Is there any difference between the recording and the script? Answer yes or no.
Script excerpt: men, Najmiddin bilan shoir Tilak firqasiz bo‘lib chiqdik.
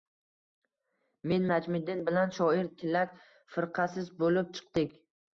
no